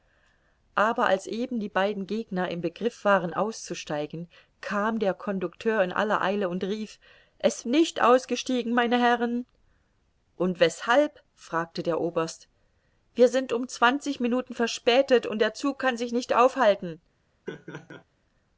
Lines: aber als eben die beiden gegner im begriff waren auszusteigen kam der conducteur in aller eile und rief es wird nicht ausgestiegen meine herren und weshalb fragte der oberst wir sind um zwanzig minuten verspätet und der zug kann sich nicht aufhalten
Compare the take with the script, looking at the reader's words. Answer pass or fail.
fail